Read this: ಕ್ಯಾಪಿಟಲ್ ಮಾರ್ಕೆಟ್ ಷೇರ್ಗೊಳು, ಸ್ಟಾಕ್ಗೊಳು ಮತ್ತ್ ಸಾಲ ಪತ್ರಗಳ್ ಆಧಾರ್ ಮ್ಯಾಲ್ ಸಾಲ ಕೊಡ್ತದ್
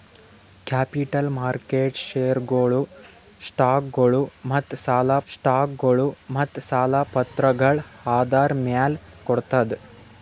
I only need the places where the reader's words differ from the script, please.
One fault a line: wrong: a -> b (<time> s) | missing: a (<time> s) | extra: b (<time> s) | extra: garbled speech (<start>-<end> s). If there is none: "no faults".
extra: ಸ್ಟಾಕ್ಗೊಳು ಮತ್ತ್ ಸಾಲ (5.3 s)
missing: ಸಾಲ (9.0 s)